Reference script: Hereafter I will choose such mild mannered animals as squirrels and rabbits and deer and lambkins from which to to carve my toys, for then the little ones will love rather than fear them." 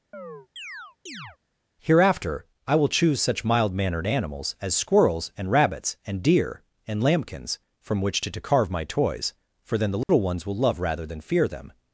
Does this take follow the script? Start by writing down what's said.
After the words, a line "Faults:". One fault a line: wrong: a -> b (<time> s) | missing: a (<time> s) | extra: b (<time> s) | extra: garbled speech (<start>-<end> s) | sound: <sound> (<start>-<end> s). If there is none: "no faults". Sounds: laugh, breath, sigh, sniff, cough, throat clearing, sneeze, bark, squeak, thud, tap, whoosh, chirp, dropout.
Hereafter I will choose such mild mannered animals as squirrels and rabbits and deer and lambkins from which to to carve my toys, for then the little ones will love rather than fear them."
Faults:
sound: chirp (0.1-1.4 s)
sound: dropout (10.0-10.1 s)